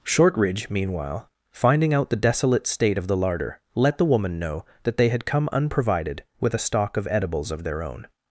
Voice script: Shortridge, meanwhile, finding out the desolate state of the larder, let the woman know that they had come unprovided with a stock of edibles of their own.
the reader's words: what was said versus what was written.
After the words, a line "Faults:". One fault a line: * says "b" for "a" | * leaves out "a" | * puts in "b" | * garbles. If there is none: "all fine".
Shortridge, meanwhile, finding out the desolate state of the larder, let the woman know that they had come unprovided with a stock of edibles of their own.
Faults:
all fine